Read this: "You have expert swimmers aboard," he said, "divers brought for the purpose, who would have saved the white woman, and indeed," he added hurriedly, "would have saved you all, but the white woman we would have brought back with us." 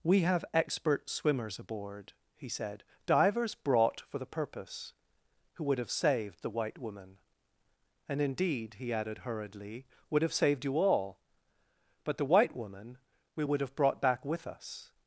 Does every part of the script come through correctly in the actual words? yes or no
no